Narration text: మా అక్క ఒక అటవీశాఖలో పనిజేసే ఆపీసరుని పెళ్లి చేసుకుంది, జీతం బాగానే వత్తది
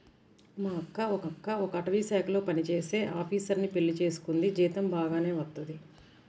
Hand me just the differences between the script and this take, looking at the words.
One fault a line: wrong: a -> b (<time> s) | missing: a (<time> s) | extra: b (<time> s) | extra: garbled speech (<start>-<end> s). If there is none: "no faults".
extra: అక్క ఒక (1.3 s)